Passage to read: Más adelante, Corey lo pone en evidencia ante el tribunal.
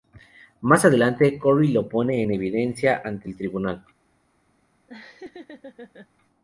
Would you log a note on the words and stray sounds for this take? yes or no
yes